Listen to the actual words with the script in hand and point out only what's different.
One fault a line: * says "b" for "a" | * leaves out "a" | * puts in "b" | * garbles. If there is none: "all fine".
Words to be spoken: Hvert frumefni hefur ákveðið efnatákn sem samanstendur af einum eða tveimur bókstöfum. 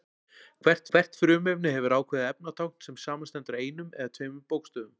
* puts in "hvert"